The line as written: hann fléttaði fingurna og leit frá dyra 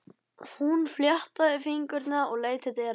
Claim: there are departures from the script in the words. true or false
true